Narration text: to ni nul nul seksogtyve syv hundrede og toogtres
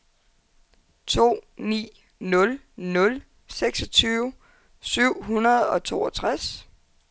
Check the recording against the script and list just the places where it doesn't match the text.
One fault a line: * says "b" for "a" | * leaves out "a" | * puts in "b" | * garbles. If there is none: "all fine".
all fine